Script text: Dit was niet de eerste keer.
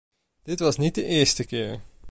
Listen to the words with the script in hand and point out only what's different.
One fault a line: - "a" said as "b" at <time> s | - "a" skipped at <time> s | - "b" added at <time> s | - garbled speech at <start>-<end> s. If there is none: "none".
none